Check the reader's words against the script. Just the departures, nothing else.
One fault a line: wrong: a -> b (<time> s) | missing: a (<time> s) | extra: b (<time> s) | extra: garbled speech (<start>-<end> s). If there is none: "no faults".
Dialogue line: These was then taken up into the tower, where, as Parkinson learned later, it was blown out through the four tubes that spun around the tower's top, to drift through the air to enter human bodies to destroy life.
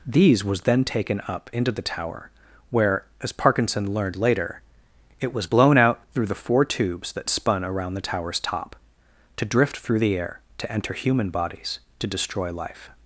no faults